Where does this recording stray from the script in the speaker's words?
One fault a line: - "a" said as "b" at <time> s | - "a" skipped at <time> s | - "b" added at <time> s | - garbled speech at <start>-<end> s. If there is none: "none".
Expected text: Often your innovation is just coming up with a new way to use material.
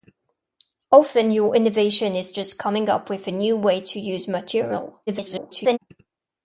- garbled speech at 5.1-5.8 s